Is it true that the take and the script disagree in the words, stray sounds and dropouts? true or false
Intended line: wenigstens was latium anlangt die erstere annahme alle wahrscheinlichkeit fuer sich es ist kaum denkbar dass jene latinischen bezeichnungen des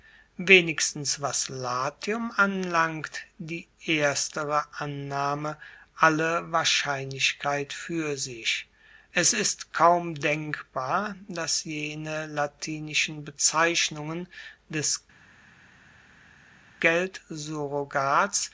false